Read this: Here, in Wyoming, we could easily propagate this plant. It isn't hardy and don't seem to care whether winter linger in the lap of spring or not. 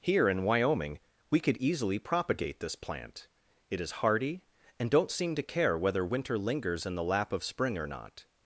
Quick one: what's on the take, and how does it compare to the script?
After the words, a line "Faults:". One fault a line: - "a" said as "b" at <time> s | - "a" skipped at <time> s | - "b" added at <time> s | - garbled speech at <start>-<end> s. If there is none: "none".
Here, in Wyoming, we could easily propagate this plant. It is hardy and don't seem to care whether winter lingers in the lap of spring or not.
Faults:
- "isn't" said as "is" at 3.8 s
- "linger" said as "lingers" at 6.4 s